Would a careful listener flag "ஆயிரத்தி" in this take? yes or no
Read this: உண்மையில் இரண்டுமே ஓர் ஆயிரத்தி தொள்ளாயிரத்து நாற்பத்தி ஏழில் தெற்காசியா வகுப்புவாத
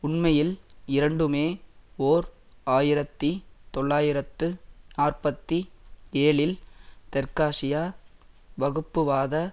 no